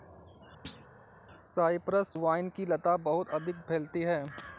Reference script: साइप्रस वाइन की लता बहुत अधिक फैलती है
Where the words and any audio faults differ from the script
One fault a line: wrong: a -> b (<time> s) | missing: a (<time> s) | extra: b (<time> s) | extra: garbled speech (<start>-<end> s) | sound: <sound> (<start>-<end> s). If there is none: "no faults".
sound: thud (0.6-0.9 s)